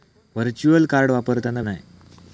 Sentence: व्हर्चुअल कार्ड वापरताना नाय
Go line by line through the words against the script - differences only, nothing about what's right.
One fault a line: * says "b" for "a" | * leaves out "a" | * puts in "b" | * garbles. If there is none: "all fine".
all fine